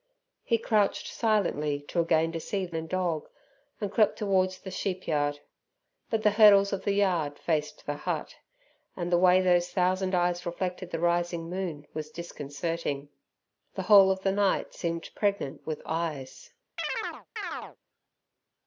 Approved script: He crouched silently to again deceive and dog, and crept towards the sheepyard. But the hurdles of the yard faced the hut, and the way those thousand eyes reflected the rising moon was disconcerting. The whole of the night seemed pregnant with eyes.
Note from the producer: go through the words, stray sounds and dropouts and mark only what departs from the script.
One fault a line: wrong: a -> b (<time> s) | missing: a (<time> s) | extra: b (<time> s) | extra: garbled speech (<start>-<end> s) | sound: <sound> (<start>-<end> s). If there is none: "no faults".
sound: chirp (16.8-17.8 s)